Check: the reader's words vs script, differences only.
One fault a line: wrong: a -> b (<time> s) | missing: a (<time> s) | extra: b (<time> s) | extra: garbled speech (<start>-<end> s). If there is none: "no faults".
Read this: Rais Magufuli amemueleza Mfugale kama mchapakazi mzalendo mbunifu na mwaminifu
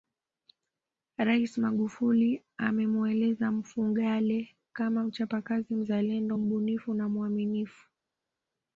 no faults